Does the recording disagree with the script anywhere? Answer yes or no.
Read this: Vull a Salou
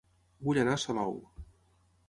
yes